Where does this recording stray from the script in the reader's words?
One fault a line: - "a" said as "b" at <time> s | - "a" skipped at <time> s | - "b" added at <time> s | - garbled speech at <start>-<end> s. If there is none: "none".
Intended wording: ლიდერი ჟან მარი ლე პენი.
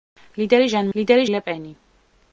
- "მარი" said as "ლიდერი" at 1.0 s